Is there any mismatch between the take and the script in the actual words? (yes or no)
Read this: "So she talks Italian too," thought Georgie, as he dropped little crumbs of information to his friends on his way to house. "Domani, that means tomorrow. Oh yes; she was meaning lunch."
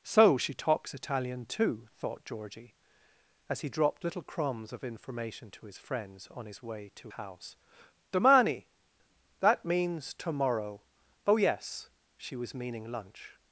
no